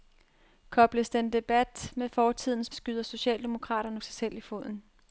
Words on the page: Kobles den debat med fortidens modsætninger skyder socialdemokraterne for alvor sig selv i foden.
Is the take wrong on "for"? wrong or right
wrong